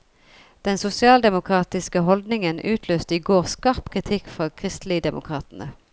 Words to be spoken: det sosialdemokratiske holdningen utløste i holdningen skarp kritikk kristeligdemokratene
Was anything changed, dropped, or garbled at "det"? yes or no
yes